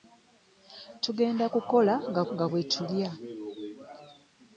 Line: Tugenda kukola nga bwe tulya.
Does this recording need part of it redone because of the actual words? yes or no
yes